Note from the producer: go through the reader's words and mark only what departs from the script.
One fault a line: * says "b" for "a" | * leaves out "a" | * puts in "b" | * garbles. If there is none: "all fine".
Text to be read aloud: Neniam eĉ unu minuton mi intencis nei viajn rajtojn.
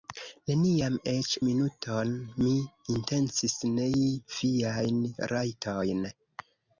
* leaves out "unu"